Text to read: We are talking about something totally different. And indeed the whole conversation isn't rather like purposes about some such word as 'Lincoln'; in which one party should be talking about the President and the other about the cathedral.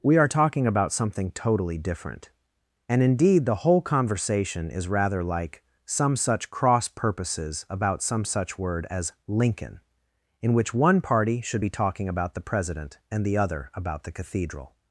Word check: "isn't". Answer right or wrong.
wrong